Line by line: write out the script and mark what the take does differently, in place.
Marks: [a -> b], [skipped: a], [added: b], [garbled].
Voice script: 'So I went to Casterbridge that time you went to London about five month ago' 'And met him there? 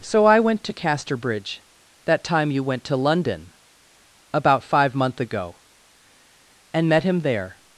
'So I went to Casterbridge that time you went to London about five month ago' 'And met him there?